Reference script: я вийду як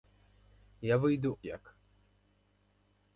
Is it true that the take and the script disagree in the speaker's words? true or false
false